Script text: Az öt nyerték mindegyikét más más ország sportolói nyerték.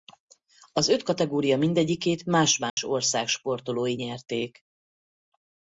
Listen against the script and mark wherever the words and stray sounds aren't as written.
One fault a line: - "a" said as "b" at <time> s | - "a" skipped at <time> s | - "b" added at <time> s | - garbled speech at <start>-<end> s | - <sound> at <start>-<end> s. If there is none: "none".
- "nyerték" said as "kategória" at 1.0 s
- dropout at 2.7-2.8 s